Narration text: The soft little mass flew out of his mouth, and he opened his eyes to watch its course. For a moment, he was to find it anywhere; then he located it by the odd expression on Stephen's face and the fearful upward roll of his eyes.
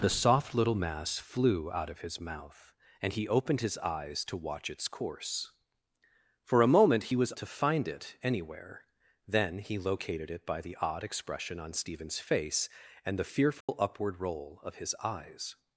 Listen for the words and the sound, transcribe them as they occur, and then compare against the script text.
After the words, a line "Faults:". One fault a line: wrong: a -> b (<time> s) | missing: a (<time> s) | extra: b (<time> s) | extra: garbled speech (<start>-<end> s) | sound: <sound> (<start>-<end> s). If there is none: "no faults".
The soft little mass flew out of his mouth, and he opened his eyes to watch its course. For a moment, he was to find it anywhere; then he located it by the odd expression on Stephen's face and the fearful upward roll of his eyes.
Faults:
sound: dropout (13.6-13.7 s)